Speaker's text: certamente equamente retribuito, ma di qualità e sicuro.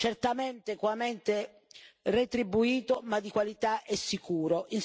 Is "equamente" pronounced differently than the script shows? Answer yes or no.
no